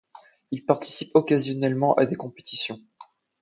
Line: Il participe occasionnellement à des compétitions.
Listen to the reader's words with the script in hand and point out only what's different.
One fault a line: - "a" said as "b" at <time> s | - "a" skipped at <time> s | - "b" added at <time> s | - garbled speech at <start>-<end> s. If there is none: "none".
none